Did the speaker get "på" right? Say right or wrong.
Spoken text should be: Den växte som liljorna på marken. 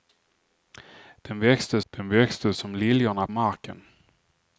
wrong